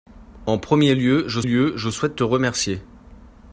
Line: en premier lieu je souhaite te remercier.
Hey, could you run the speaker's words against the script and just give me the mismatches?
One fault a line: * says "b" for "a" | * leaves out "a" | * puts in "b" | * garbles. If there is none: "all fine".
* puts in "lieu je"